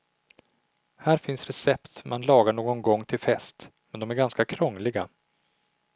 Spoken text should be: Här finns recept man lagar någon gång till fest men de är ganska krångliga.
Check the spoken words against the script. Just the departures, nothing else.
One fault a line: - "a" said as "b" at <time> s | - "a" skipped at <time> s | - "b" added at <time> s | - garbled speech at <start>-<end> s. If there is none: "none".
none